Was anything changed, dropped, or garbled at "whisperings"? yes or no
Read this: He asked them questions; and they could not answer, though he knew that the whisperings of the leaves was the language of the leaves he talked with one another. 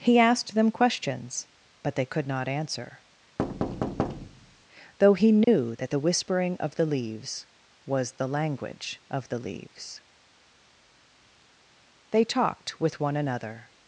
yes